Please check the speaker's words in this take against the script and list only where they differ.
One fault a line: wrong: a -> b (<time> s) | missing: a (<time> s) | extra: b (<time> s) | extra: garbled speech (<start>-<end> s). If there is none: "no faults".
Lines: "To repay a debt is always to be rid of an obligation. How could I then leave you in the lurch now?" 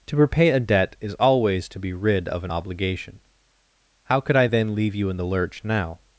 no faults